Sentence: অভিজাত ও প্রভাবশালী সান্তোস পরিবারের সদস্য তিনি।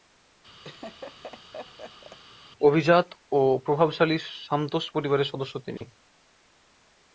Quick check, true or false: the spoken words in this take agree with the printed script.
true